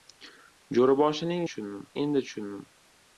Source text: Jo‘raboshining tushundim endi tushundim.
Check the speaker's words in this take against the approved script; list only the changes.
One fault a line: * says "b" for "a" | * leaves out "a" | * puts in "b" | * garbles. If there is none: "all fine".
all fine